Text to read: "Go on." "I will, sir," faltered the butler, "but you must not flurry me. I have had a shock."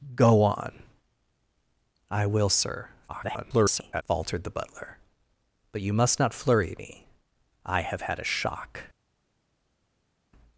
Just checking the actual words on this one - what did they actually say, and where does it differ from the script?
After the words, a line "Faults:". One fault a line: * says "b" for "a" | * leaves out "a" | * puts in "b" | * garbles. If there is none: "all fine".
"Go on." "I will, sir," [garbled] faltered the butler, "but you must not flurry me. I have had a shock."
Faults:
* garbles